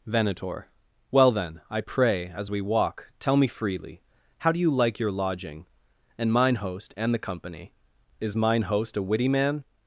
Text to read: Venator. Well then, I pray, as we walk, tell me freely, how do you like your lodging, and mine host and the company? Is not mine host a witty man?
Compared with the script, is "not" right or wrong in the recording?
wrong